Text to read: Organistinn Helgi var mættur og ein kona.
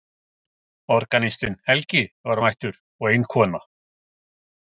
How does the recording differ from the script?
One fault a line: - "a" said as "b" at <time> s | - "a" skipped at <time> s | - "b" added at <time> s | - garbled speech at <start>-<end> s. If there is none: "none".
none